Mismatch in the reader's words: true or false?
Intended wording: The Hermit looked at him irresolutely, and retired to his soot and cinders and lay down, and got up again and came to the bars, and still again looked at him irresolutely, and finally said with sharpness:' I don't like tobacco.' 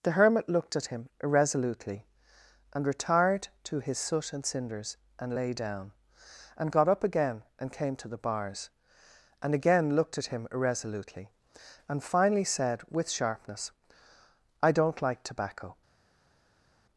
true